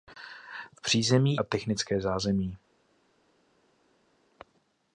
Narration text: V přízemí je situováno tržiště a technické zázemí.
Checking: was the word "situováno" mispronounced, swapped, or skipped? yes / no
yes